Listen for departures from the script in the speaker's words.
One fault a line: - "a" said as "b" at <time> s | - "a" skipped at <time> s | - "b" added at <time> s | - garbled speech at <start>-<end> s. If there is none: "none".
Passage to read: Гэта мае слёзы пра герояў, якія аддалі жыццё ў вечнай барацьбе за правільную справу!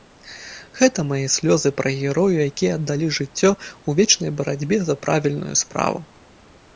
none